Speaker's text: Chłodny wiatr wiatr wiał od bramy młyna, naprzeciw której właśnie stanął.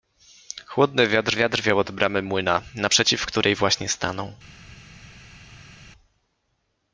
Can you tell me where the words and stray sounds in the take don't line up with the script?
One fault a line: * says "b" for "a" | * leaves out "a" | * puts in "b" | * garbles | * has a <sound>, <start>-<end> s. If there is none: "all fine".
all fine